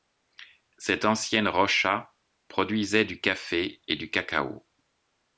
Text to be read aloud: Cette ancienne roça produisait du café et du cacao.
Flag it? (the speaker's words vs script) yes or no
no